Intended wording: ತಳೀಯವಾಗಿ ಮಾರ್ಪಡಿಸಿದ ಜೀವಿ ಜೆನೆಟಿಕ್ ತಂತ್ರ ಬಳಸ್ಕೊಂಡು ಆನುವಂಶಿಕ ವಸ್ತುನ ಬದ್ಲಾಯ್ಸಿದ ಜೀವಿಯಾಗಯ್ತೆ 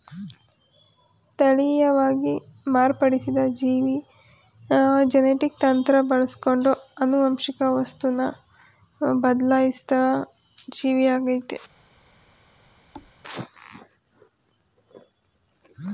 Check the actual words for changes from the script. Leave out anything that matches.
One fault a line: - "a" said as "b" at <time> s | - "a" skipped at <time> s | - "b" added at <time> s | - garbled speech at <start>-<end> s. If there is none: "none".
none